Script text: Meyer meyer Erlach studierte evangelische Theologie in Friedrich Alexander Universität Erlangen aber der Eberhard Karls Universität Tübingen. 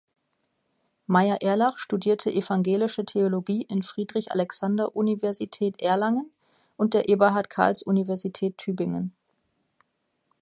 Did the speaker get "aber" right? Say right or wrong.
wrong